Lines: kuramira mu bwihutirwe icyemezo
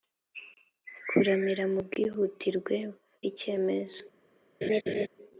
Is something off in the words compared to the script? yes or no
no